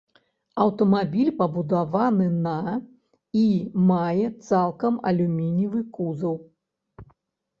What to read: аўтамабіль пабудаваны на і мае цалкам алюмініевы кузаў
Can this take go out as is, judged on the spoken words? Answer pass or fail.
pass